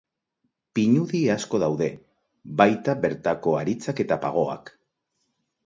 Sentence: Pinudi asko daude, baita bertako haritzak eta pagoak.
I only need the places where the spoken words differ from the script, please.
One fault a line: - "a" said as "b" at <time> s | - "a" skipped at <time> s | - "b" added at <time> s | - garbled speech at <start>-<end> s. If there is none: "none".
none